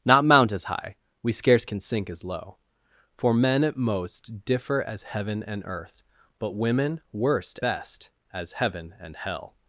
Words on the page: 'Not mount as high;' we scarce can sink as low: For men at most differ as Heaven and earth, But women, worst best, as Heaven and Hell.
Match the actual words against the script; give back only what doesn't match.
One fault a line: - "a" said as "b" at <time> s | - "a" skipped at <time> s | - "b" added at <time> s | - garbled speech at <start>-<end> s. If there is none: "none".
none